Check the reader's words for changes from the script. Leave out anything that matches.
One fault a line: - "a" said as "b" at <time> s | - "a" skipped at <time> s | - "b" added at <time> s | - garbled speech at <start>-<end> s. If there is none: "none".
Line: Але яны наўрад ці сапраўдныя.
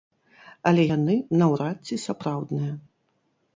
none